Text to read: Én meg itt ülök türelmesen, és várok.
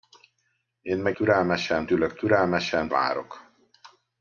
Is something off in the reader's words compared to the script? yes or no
yes